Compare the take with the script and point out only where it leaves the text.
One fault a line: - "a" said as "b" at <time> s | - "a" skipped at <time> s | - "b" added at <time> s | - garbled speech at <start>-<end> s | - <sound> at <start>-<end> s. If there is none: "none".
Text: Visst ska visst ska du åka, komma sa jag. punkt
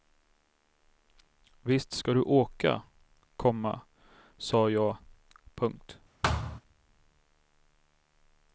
- "visst ska" skipped at 2.1 s
- thud at 6.2-6.6 s